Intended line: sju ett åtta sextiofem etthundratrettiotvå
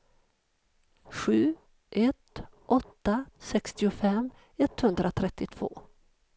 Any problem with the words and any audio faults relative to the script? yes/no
no